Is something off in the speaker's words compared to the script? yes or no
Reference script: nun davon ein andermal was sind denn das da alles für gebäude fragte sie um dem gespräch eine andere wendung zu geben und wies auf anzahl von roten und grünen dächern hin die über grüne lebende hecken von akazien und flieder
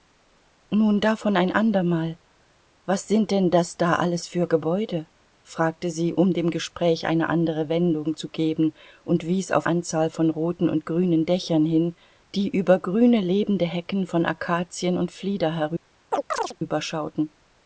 no